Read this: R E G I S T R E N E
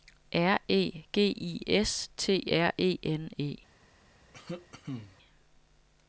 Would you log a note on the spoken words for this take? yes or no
no